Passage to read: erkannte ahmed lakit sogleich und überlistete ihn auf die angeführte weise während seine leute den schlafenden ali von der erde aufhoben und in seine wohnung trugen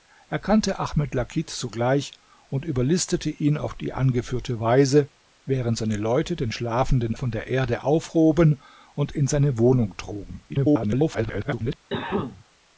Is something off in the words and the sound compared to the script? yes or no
yes